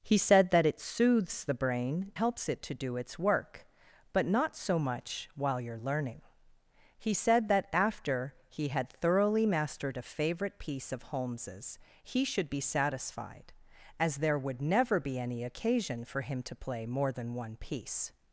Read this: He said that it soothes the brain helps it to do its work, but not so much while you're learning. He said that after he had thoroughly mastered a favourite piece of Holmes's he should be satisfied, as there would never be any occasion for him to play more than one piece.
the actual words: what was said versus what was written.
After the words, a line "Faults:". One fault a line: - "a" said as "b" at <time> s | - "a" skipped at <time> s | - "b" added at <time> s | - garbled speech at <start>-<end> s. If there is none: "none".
He said that it soothes the brain helps it to do its work, but not so much while you're learning. He said that after he had thoroughly mastered a favourite piece of Holmes's he should be satisfied, as there would never be any occasion for him to play more than one piece.
Faults:
none